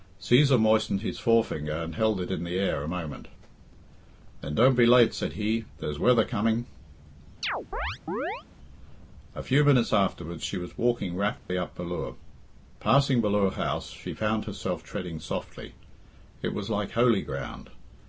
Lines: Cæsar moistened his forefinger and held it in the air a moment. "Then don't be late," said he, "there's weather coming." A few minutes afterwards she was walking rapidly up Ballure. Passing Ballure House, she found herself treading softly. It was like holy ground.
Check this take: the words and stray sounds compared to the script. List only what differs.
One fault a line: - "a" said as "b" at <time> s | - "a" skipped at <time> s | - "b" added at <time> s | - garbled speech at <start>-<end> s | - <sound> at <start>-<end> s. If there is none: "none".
- chirp at 7.4-8.4 s
- dropout at 11.4-11.5 s